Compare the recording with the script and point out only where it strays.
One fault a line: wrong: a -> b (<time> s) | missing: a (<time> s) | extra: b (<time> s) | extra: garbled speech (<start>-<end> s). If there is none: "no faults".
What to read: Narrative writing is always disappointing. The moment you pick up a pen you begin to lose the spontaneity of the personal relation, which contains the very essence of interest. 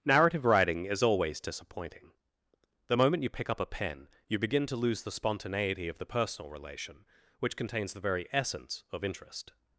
no faults